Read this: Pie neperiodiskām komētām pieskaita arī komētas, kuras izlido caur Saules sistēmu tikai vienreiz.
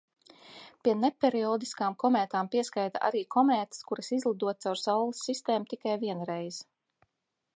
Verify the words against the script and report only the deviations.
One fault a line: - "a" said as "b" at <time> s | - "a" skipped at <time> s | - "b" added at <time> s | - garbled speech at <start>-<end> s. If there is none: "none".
none